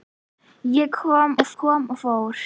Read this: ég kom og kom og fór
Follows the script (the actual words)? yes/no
yes